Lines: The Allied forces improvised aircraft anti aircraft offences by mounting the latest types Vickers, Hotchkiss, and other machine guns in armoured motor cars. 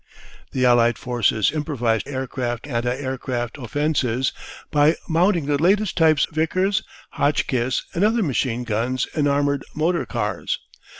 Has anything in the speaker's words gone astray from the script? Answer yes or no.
no